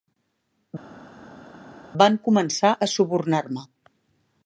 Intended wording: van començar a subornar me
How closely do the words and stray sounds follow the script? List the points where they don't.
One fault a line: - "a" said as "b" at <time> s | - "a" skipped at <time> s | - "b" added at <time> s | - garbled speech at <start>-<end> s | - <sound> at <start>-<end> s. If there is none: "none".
none